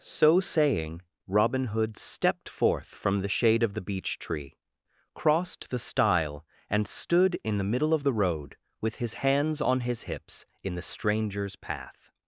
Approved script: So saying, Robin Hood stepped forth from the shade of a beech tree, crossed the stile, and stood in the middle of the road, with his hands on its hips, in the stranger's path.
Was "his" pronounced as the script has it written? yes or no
yes